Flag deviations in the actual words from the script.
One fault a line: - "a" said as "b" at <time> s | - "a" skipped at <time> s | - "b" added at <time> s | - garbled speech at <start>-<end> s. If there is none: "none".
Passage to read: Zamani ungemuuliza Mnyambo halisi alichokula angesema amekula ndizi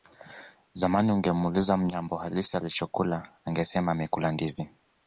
none